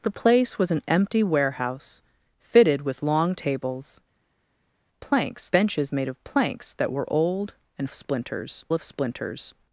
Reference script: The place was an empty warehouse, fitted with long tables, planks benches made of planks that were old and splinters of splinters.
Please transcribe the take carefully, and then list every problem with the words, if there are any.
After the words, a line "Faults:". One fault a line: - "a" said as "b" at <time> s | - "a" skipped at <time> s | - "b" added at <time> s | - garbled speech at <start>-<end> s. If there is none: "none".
The place was an empty warehouse, fitted with long tables, planks benches made of planks that were old and splinters of splinters.
Faults:
none